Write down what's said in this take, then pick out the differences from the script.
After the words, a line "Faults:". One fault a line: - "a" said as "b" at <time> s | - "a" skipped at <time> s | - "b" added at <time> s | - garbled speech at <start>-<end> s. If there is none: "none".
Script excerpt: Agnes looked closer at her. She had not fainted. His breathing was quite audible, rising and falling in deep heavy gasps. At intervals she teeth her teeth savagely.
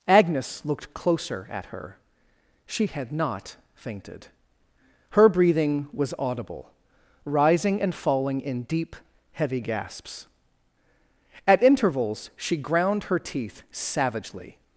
Agnes looked closer at her. She had not fainted. Her breathing was audible, rising and falling in deep heavy gasps. At intervals she ground her teeth savagely.
Faults:
- "His" said as "Her" at 5.1 s
- "quite" skipped at 6.1 s
- "teeth" said as "ground" at 12.6 s